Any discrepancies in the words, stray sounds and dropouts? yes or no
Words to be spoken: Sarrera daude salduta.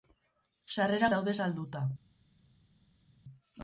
no